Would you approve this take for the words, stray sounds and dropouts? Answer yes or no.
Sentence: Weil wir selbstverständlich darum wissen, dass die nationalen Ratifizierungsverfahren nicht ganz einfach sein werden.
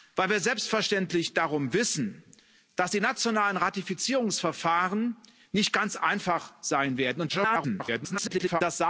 no